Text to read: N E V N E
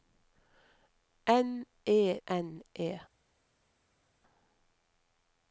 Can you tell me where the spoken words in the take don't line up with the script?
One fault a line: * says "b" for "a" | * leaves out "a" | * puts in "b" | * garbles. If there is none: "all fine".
* leaves out "V"